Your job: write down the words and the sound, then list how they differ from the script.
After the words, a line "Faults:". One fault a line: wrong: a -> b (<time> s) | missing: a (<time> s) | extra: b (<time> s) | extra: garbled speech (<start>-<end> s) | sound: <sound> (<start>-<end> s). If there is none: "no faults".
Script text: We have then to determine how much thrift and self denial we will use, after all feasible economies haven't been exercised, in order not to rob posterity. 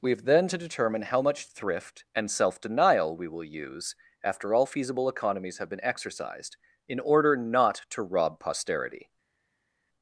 We have then to determine how much thrift and self denial we will use, after all feasible economies have been exercised, in order not to rob posterity.
Faults:
wrong: haven't -> have (5.6 s)